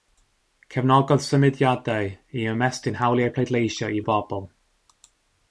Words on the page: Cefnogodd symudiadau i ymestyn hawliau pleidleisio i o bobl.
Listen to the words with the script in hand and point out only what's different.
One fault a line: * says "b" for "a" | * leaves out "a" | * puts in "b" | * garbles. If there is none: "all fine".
all fine